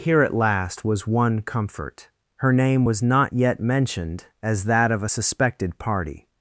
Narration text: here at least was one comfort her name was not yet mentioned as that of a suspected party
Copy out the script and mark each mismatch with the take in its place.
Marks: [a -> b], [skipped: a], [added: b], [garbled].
here at [least -> last] was one comfort her name was not yet mentioned as that of a suspected party